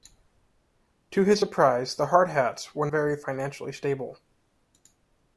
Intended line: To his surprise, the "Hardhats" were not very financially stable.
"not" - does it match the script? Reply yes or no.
no